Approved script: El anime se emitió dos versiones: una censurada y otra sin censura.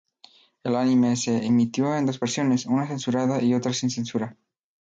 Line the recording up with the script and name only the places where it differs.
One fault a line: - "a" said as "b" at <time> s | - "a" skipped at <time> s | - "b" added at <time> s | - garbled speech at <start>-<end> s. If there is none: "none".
- "en" added at 1.9 s